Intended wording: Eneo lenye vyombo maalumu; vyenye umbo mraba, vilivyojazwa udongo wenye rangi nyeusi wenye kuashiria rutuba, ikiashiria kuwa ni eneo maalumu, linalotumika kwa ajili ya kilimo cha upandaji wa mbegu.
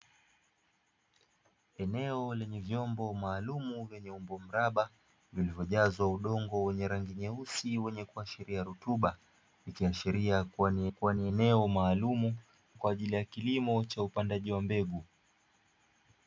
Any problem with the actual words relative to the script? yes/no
yes